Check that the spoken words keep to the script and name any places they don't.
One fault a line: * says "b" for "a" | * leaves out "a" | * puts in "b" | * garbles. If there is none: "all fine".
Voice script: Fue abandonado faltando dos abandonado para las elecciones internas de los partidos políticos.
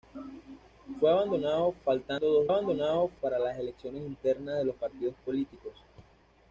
all fine